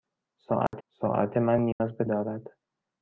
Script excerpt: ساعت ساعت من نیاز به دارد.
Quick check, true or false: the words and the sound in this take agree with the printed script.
false